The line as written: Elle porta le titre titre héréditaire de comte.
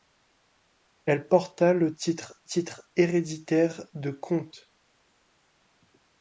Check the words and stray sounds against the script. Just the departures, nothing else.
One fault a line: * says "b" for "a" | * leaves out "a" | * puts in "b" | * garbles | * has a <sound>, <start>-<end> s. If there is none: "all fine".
all fine